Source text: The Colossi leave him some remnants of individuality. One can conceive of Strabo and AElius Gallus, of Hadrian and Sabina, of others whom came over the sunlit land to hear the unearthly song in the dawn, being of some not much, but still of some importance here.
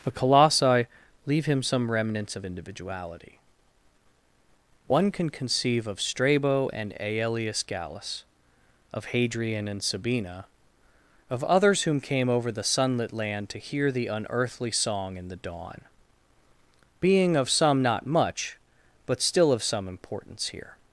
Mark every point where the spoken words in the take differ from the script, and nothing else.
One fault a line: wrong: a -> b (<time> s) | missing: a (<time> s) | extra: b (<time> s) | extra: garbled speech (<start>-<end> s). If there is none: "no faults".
no faults